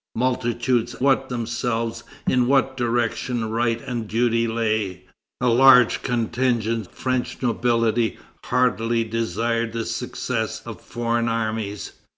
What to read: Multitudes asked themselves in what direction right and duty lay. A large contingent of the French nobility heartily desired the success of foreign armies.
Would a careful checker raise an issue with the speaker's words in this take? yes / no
yes